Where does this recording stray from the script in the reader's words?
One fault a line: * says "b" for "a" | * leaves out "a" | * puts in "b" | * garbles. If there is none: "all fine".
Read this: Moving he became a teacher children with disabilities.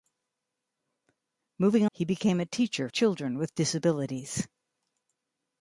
all fine